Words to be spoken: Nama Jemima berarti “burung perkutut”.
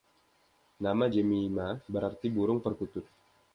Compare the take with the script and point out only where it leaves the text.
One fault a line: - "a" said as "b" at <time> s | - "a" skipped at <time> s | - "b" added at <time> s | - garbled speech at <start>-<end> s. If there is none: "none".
none